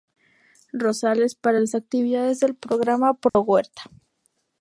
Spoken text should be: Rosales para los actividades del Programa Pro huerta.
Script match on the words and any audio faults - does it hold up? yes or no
no